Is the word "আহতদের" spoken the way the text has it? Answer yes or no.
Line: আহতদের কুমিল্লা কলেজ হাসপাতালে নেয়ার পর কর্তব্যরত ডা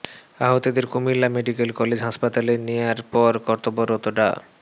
yes